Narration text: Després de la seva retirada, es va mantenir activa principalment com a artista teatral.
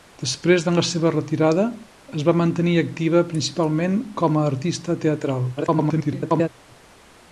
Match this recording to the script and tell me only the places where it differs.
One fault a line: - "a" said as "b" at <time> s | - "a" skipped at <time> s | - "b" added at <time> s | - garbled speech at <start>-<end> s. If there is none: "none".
- garbled speech at 5.6-6.5 s